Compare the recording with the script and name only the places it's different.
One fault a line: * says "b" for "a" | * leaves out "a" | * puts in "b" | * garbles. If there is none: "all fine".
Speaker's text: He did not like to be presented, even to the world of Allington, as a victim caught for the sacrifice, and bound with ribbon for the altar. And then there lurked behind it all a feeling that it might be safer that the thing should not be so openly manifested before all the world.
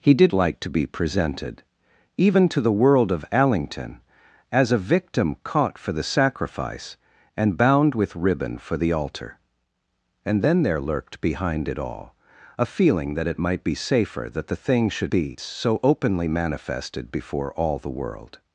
* leaves out "not"
* leaves out "not"